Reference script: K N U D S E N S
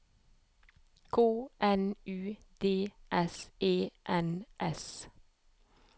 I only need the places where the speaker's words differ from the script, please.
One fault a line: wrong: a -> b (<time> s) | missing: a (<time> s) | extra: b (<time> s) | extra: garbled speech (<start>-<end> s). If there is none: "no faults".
no faults